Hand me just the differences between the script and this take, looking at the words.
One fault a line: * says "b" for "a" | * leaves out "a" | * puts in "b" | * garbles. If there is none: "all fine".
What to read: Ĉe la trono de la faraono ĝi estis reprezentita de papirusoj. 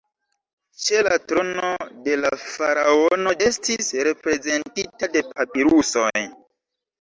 * leaves out "ĝi"